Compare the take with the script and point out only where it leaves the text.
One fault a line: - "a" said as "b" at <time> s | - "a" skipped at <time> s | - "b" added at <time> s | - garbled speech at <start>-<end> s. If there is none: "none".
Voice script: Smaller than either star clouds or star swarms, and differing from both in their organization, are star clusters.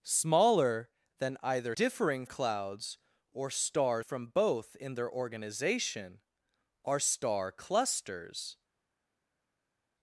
- "star" said as "differing" at 1.7 s
- "swarms and differing" skipped at 4.0 s